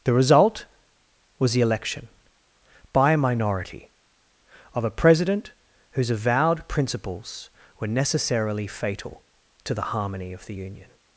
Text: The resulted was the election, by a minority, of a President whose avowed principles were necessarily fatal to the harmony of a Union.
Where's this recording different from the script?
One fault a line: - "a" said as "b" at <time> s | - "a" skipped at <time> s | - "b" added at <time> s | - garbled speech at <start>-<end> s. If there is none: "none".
- "resulted" said as "result" at 0.1 s
- "a" said as "the" at 10.4 s